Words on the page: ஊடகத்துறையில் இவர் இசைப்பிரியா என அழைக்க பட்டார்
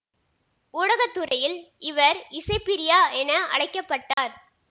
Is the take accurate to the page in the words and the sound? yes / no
no